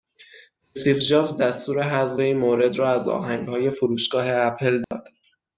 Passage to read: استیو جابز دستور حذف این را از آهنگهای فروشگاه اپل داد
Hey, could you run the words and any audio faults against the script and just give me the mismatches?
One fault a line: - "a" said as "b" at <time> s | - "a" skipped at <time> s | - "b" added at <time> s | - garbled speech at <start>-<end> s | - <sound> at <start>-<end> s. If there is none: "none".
- "مورد" added at 2.4 s
- dropout at 4.8-4.9 s